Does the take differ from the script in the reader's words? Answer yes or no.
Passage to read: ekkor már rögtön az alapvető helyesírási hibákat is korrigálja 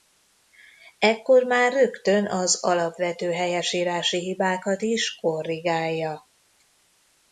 no